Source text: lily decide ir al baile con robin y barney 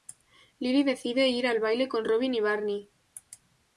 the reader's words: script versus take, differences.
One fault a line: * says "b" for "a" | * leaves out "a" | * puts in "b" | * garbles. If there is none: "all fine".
all fine